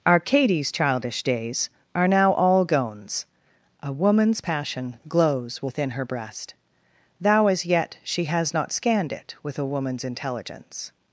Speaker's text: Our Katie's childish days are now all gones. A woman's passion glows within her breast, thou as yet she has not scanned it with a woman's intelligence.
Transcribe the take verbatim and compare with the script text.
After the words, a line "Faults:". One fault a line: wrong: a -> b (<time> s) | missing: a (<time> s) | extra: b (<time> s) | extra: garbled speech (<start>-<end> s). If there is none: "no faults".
Our Katie's childish days are now all gones. A woman's passion glows within her breast, thou as yet she has not scanned it with a woman's intelligence.
Faults:
no faults